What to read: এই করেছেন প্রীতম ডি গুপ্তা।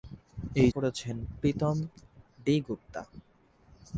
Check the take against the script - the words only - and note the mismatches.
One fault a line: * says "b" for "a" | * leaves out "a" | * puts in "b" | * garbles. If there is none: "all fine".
all fine